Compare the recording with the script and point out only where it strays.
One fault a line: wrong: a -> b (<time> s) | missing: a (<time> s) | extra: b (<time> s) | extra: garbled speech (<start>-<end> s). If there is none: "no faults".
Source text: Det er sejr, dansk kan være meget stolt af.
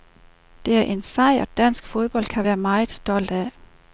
extra: en (0.8 s)
extra: fodbold (1.9 s)